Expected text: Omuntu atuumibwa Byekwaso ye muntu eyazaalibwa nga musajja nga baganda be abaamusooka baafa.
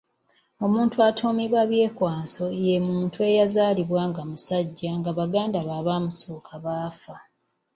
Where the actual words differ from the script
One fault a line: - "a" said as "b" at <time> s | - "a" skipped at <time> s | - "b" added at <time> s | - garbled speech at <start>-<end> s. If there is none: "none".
none